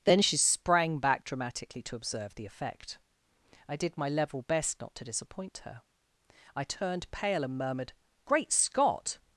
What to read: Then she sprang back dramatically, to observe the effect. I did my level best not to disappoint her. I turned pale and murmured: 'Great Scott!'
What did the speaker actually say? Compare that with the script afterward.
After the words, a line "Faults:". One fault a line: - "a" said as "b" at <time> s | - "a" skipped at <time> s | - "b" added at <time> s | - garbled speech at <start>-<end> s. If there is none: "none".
Then she sprang back dramatically, to observe the effect. I did my level best not to disappoint her. I turned pale and murmured: 'Great Scott!'
Faults:
none